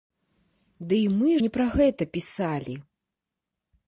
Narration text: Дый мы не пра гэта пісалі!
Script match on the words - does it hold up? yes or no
yes